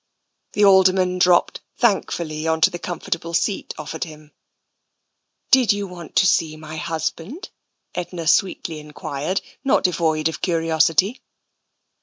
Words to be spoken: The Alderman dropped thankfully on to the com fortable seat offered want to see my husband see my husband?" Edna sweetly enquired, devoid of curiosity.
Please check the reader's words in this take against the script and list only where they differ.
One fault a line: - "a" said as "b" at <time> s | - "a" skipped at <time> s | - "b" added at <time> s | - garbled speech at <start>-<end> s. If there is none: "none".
- "want to see my husband" said as "him Did you want to" at 4.0 s
- "not" added at 9.6 s